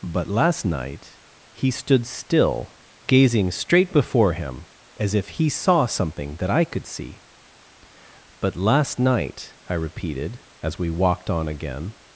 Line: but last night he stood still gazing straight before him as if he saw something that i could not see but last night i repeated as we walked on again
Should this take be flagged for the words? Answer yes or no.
yes